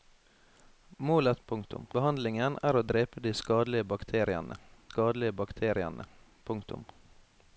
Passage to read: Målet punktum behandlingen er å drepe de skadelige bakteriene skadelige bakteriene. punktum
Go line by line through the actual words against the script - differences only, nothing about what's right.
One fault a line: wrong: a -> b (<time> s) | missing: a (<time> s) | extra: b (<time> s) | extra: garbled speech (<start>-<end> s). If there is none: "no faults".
no faults